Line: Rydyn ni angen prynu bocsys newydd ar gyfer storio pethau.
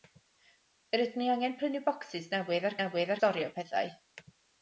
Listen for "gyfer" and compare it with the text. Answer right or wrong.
wrong